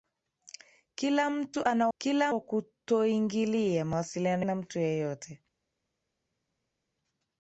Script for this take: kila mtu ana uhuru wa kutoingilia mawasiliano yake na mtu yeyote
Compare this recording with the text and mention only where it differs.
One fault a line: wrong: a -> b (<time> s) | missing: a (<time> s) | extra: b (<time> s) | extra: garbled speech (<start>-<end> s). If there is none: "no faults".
wrong: uhuru -> kila (2.0 s)
missing: yake (4.5 s)